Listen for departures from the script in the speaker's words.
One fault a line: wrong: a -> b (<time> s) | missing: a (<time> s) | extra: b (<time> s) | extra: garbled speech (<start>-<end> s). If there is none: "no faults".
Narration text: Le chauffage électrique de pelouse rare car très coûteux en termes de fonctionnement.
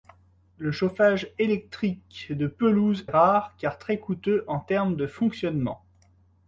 no faults